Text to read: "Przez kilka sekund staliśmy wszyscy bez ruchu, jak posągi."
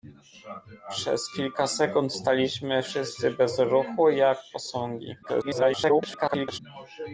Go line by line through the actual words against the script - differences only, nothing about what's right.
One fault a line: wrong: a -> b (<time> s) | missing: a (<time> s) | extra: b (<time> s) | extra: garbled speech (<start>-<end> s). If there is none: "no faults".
extra: garbled speech (5.2-6.6 s)